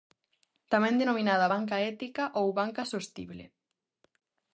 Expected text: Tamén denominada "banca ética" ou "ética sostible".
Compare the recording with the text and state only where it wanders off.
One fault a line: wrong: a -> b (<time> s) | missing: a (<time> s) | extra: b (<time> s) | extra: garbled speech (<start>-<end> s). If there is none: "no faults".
wrong: ética -> banca (2.6 s)